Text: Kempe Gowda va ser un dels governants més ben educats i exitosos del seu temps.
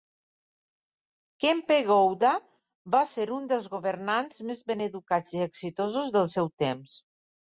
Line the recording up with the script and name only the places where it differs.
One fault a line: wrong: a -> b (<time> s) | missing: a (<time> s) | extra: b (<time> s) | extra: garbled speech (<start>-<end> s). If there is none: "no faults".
no faults